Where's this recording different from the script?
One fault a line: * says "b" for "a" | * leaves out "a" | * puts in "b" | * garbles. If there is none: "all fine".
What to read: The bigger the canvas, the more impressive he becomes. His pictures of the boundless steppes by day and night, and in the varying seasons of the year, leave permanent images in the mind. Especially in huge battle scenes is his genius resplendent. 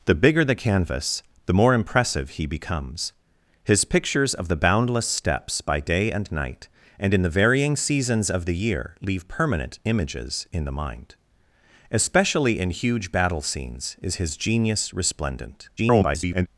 * garbles